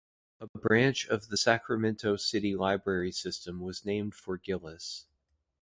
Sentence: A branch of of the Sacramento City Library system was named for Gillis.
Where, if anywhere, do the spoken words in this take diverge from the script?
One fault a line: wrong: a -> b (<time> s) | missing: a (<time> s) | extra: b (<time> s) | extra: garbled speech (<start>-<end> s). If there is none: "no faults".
missing: of (1.3 s)